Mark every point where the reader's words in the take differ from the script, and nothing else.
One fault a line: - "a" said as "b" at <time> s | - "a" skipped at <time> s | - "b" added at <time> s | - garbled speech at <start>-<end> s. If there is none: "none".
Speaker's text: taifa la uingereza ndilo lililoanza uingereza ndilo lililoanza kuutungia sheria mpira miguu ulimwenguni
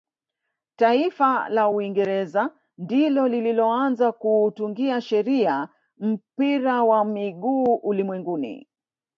- "uingereza ndilo lililoanza" skipped at 4.1 s
- "wa" added at 6.8 s